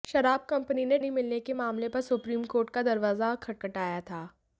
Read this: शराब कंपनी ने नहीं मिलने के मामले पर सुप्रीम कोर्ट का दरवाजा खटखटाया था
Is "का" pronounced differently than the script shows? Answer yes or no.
no